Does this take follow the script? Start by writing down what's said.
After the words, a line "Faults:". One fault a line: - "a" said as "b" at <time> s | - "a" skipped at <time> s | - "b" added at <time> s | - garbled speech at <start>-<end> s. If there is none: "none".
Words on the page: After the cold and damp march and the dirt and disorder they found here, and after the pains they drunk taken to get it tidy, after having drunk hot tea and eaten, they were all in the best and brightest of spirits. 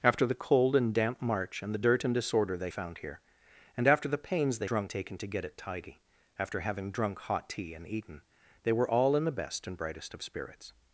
After the cold and damp march and the dirt and disorder they found here, and after the pains they drunk taken to get it tidy, after having drunk hot tea and eaten, they were all in the best and brightest of spirits.
Faults:
none